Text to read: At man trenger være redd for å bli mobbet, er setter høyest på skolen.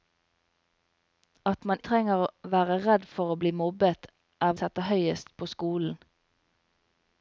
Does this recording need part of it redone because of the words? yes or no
no